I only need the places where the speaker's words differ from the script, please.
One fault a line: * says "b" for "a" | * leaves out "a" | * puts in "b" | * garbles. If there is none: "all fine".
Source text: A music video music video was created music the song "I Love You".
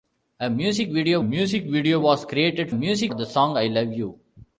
all fine